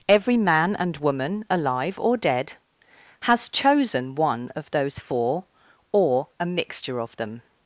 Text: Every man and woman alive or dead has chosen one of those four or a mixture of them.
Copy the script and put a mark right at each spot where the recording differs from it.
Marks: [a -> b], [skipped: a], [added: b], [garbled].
Every man and woman alive or dead has chosen one of those four or a mixture of them.